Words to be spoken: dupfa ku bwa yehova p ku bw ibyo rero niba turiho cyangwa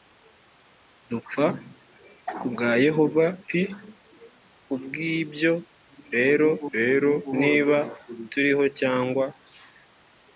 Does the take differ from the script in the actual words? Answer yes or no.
yes